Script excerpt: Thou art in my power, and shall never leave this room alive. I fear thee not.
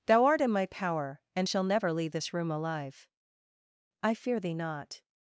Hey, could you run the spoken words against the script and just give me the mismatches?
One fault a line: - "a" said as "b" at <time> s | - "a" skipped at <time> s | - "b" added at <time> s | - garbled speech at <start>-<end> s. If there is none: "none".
none